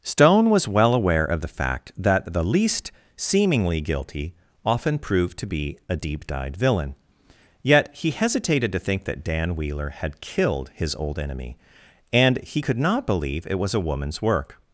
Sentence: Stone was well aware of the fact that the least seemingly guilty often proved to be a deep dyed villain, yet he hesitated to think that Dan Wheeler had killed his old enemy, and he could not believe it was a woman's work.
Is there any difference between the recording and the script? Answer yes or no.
no